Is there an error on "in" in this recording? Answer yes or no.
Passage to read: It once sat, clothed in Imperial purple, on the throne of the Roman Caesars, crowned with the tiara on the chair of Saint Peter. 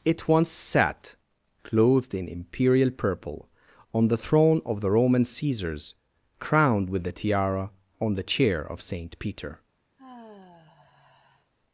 no